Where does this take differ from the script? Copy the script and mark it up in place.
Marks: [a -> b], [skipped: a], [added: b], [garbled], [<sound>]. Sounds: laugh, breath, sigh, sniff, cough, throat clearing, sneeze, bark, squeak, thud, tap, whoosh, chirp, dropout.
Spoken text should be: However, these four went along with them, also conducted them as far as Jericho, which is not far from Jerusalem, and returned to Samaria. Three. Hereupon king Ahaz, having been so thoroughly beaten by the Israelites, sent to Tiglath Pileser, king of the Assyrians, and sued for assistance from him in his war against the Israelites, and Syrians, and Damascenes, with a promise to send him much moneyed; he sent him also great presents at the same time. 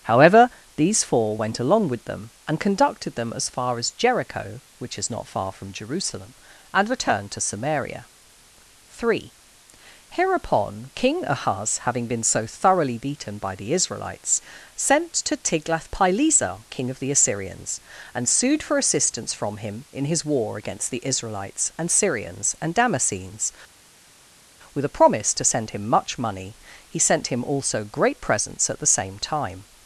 However, these four went along with them, [also -> and] conducted them as far as Jericho, which is not far from Jerusalem, and returned to Samaria. Three. Hereupon king Ahaz, having been so thoroughly beaten by the Israelites, sent to Tiglath Pileser, king of the Assyrians, and sued for assistance from him in his war against the Israelites, and Syrians, and Damascenes, with a promise to send him much [moneyed; -> money] he sent him also great presents at the same time.